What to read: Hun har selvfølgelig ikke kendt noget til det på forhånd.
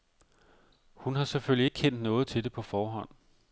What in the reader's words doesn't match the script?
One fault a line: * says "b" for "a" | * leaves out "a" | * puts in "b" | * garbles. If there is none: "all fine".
all fine